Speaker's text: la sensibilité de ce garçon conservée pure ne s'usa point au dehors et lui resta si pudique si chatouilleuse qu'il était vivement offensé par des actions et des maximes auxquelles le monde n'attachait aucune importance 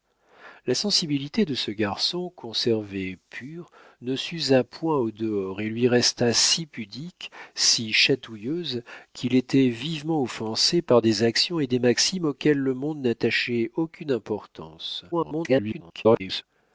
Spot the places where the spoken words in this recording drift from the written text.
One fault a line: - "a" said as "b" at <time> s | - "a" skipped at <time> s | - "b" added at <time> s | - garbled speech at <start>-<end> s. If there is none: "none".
- garbled speech at 15.1-16.4 s